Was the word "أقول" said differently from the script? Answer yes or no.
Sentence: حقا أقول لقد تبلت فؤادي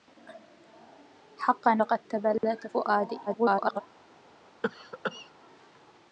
yes